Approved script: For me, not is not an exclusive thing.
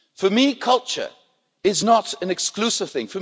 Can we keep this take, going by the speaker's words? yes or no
no